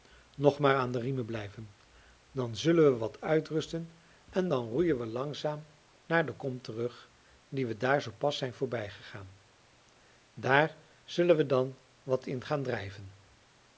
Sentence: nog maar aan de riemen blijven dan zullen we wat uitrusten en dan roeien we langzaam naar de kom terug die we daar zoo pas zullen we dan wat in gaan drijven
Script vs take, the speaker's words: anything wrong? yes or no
yes